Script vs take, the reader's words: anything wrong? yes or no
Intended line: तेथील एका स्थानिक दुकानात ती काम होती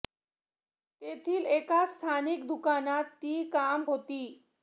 no